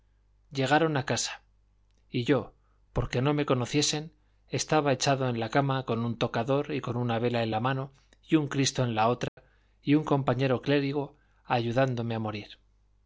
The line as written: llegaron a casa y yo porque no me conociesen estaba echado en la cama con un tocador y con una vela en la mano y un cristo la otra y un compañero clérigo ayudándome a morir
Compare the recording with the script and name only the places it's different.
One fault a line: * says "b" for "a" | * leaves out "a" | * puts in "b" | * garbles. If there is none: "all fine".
* puts in "en"